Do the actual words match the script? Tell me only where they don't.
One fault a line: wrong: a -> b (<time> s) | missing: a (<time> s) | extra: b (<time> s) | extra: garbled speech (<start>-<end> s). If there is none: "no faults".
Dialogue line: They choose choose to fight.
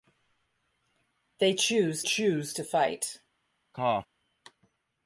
no faults